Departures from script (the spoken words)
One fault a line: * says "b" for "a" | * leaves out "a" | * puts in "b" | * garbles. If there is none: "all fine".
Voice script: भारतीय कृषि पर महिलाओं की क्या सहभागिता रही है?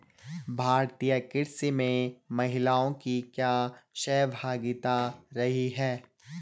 * says "में" for "पर"